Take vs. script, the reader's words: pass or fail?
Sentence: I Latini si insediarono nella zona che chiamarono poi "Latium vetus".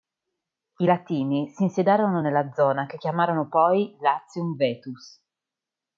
pass